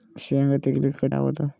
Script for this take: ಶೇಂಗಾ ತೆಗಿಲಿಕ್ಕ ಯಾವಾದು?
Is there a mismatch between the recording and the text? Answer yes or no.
no